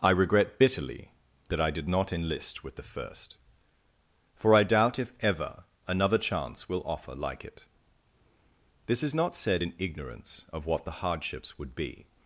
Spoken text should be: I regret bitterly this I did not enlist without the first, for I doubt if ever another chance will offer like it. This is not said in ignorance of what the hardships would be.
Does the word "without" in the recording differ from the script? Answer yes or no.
yes